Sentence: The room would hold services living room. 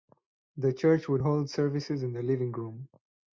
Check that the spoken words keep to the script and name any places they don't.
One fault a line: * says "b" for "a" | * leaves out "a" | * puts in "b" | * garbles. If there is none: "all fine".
* says "church" for "room"
* puts in "in the"